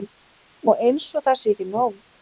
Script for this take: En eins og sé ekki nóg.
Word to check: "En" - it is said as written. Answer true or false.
false